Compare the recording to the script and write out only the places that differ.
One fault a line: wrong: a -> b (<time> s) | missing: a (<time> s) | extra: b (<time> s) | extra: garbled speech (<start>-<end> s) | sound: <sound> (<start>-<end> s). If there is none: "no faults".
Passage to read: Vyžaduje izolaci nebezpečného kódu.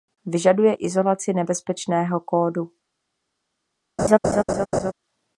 sound: laugh (4.0-4.9 s)